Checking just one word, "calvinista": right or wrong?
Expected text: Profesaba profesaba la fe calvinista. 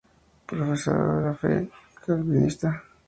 right